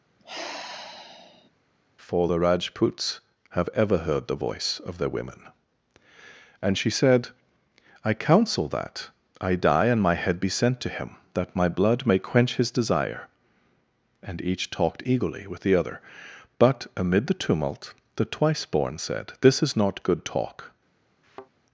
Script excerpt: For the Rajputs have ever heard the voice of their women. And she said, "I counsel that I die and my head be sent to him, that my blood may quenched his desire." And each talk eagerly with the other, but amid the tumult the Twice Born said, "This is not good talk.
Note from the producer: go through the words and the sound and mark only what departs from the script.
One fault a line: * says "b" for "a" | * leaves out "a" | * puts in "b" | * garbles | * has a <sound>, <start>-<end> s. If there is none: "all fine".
* has a sigh, 0.2-1.5 s
* says "quench" for "quenched"
* says "talked" for "talk"
* has a thud, 21.2-21.5 s